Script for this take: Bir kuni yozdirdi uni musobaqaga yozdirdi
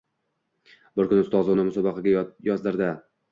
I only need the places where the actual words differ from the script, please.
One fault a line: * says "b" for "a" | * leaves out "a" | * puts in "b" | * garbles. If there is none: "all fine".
* says "ustozi" for "yozdirdi"